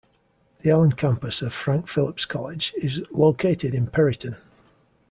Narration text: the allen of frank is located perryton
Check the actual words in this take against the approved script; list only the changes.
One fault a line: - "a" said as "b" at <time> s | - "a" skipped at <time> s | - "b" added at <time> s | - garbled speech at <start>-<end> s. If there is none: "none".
- "campus" added at 0.9 s
- "phillips college" added at 1.9 s
- "in" added at 3.7 s